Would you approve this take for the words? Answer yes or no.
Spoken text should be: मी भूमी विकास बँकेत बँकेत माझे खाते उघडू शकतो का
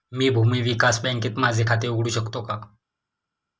no